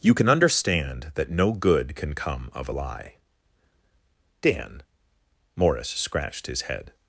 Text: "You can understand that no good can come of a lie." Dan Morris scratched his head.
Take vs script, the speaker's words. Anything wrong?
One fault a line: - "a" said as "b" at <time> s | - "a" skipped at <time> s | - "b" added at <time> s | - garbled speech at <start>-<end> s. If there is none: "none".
none